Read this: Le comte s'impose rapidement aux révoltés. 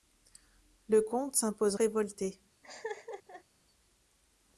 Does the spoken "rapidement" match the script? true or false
false